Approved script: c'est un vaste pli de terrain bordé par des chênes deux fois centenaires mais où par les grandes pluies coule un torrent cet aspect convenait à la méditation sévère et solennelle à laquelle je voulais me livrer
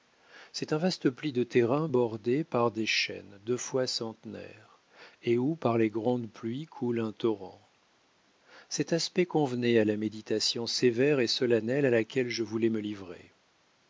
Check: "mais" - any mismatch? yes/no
yes